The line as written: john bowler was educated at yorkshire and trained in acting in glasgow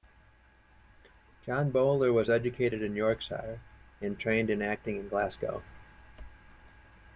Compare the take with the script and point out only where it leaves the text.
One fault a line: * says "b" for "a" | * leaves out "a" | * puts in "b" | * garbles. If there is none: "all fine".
* says "in" for "at"